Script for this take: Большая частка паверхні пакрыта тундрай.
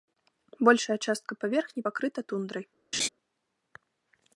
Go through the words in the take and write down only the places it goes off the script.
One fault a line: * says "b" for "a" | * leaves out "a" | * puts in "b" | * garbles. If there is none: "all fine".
all fine